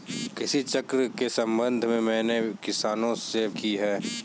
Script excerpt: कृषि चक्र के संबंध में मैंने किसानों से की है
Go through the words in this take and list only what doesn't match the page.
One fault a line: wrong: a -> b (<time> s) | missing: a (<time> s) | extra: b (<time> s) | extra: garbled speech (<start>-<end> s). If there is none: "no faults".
no faults